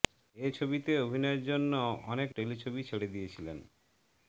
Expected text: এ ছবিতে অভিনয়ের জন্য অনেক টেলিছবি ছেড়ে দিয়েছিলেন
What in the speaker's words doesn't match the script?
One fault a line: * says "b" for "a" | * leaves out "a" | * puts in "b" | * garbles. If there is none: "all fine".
all fine